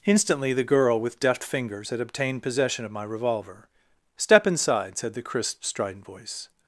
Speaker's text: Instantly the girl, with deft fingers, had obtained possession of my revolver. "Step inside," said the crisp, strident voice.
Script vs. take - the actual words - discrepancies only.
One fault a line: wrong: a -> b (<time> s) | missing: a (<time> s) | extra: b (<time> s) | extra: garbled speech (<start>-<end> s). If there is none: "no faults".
no faults